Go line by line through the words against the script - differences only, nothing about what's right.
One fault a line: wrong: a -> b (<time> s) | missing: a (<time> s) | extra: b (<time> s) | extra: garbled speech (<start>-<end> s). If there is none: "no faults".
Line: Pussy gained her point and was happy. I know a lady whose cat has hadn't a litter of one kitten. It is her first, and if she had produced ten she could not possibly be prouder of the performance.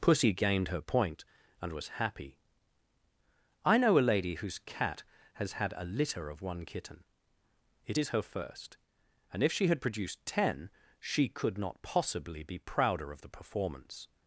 wrong: hadn't -> had (5.5 s)